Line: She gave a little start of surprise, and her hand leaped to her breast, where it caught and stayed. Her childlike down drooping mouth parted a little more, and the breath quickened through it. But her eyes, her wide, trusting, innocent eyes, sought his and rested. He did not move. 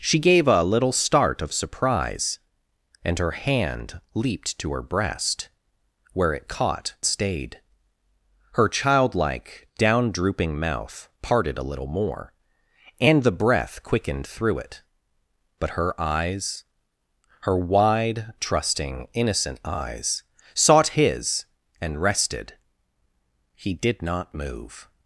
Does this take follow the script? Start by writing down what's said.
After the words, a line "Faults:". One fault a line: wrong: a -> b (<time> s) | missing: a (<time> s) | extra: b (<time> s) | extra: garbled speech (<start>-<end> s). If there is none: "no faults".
She gave a little start of surprise, and her hand leaped to her breast, where it caught stayed. Her childlike down drooping mouth parted a little more, and the breath quickened through it. But her eyes, her wide, trusting, innocent eyes, sought his and rested. He did not move.
Faults:
missing: and (7.0 s)